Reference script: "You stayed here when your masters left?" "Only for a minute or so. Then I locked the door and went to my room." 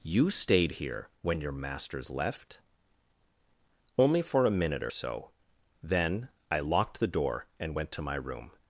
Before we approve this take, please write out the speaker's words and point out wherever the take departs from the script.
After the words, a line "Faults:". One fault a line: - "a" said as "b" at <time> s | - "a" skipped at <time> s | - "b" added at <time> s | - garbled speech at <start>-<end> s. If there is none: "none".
"You stayed here when your masters left?" "Only for a minute or so. Then I locked the door and went to my room."
Faults:
none